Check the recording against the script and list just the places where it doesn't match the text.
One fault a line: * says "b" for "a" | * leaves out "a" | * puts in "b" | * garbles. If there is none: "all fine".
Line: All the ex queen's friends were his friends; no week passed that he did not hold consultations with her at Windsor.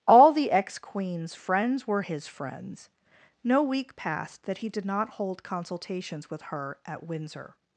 all fine